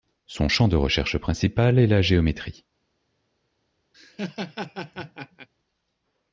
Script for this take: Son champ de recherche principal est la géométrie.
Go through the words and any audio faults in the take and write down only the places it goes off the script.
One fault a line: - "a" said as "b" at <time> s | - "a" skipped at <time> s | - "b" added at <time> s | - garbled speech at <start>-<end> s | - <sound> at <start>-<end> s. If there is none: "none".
- laugh at 3.9-5.5 s